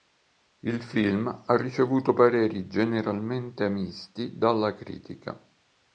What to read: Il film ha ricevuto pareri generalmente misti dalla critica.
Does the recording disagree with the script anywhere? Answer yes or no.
no